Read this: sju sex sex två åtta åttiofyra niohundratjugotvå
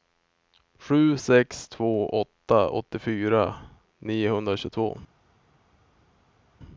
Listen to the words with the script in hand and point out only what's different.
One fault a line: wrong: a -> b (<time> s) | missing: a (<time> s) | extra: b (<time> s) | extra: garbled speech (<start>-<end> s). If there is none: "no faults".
missing: sex (1.7 s)